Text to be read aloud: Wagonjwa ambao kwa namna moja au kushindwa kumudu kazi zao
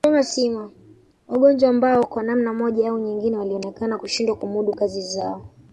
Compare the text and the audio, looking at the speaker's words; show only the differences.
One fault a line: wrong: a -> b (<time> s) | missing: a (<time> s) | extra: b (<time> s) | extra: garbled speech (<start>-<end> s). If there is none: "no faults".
extra: nyingine walionekana (3.0 s)